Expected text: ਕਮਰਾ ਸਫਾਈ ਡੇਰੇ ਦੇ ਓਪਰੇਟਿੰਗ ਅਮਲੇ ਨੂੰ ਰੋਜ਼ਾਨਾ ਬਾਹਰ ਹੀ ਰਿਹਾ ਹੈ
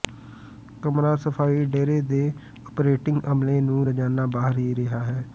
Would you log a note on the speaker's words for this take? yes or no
no